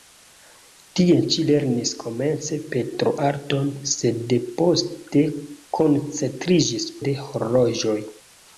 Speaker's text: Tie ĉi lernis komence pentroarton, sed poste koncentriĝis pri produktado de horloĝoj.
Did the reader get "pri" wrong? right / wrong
wrong